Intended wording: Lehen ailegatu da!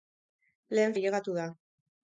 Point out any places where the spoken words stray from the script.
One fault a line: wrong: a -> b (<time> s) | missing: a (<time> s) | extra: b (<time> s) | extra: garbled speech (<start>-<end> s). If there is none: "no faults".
no faults